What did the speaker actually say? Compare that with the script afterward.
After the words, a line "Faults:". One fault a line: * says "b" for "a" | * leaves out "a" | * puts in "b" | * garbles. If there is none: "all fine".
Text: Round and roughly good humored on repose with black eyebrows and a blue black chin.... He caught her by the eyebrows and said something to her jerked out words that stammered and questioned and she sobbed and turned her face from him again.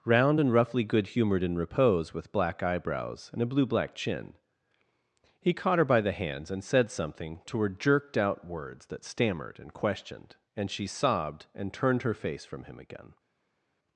Round and roughly good humored in repose with black eyebrows and a blue black chin.... He caught her by the hands and said something to her jerked out words that stammered and questioned and she sobbed and turned her face from him again.
Faults:
* says "in" for "on"
* says "hands" for "eyebrows"